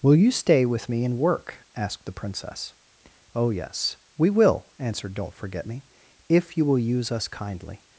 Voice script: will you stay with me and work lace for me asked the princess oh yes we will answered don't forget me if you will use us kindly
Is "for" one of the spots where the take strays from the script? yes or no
yes